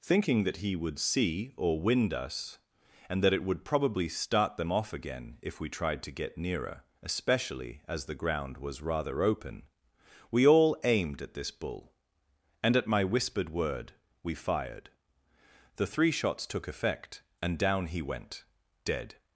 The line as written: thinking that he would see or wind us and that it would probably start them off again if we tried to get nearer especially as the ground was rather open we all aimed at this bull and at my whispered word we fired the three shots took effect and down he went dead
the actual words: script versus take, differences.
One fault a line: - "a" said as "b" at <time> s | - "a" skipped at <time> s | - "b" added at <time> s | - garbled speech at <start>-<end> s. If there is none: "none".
none